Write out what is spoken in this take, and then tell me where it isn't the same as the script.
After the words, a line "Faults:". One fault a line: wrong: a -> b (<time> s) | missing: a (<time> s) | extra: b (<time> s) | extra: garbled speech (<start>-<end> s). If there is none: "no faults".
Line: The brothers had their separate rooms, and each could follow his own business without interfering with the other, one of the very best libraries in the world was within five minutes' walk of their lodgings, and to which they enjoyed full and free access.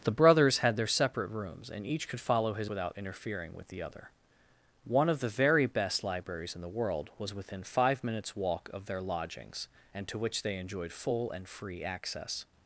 The brothers had their separate rooms, and each could follow his without interfering with the other, one of the very best libraries in the world was within five minutes' walk of their lodgings, and to which they enjoyed full and free access.
Faults:
missing: own business (2.7 s)